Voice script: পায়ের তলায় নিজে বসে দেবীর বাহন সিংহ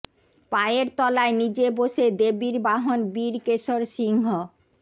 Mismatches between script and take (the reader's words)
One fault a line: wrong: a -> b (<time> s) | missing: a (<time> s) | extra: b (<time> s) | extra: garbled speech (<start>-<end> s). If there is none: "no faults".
extra: বীর কেশর (3.1 s)